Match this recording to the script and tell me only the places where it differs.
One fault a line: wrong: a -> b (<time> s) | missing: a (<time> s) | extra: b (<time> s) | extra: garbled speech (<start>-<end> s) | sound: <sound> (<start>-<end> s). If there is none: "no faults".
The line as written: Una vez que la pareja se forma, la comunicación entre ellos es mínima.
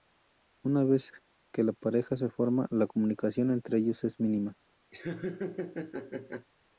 sound: laugh (4.9-6.5 s)